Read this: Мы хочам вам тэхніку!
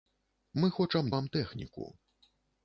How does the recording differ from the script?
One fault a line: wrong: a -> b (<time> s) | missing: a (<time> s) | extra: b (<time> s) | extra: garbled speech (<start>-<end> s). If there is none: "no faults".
no faults